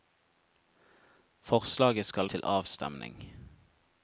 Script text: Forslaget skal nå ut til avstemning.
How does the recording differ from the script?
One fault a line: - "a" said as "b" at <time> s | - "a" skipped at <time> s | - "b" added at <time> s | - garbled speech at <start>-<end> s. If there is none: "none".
- "nå ut" skipped at 2.3 s